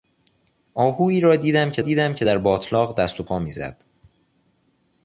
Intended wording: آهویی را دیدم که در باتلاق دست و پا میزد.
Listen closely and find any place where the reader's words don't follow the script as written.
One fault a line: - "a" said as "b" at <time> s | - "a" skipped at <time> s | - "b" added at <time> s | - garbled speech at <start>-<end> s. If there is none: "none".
- "دیدم که" added at 1.8 s